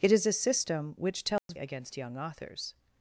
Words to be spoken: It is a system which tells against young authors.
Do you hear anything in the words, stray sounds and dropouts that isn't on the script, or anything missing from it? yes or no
yes